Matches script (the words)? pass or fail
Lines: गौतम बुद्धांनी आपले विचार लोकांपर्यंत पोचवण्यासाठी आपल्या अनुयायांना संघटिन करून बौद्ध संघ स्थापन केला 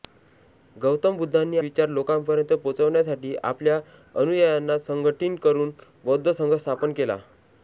fail